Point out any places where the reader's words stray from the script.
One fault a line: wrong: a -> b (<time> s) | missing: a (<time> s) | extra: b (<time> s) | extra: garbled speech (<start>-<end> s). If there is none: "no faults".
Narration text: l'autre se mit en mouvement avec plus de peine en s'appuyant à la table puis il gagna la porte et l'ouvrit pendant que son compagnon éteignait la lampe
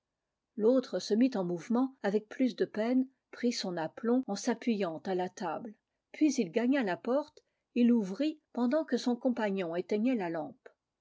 extra: prit son aplomb (3.3 s)